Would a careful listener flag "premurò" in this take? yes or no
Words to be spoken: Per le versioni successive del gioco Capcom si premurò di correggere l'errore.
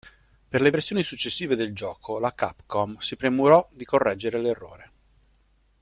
no